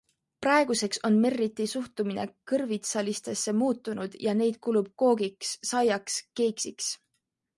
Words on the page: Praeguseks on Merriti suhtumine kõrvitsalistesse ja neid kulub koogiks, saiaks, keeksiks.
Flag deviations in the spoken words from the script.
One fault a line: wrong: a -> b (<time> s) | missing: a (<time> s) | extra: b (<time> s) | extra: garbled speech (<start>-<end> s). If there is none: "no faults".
extra: muutunud (3.6 s)